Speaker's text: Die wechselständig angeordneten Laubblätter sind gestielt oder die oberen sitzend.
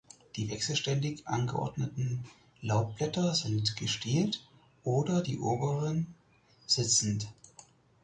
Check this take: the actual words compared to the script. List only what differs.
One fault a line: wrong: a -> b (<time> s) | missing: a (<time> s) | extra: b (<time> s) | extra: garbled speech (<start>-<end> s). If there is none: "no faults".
no faults